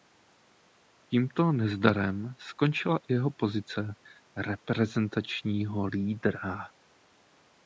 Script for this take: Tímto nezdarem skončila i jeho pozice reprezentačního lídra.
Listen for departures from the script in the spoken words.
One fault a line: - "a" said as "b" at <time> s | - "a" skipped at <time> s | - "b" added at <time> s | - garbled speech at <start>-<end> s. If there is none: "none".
none